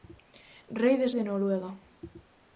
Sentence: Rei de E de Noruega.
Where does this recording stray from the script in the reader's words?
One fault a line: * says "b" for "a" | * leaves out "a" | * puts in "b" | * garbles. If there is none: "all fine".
all fine